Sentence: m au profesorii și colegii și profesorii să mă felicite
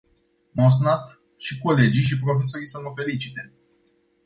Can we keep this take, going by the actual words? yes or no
no